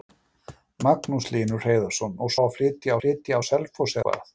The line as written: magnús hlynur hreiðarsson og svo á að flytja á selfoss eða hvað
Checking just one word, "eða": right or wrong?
wrong